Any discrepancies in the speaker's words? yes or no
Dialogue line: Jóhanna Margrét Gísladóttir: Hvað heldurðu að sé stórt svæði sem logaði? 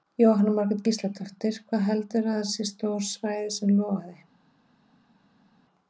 no